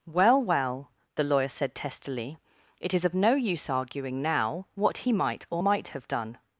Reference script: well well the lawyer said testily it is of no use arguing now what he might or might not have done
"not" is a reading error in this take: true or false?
true